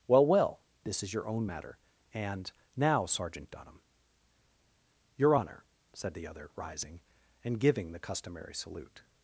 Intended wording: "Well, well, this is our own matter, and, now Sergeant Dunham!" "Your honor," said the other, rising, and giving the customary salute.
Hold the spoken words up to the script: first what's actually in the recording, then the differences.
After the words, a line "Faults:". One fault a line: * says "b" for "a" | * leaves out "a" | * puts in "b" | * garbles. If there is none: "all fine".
"Well, well, this is your own matter, and, now Sergeant Dunham!" "Your honor," said the other, rising, and giving the customary salute.
Faults:
* says "your" for "our"